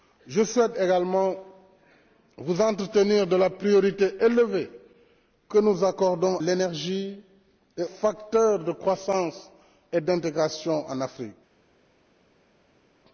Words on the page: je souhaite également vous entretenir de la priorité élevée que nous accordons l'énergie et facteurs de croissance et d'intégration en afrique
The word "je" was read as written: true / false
true